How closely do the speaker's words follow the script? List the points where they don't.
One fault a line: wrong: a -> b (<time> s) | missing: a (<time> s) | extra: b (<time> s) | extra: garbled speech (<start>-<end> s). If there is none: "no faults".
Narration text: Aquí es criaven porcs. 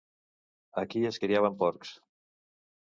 no faults